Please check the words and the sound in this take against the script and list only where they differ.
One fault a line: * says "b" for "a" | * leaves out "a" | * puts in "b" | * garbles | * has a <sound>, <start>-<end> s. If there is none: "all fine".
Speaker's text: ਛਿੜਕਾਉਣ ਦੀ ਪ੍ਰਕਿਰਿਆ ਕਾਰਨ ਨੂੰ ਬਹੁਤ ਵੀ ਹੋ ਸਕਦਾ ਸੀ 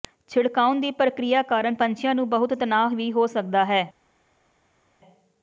* puts in "ਪੰਛੀਆਂ"
* puts in "ਤਣਾਅ"
* says "ਹੈ" for "ਸੀ"